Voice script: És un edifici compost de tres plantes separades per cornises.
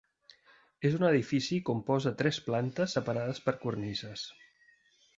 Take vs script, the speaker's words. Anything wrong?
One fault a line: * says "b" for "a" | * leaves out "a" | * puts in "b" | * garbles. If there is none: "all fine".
all fine